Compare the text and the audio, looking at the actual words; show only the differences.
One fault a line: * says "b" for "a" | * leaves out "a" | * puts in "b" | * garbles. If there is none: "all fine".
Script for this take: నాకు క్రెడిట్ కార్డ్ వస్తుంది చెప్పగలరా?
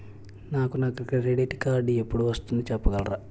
* puts in "నా"
* puts in "ఎపుడు"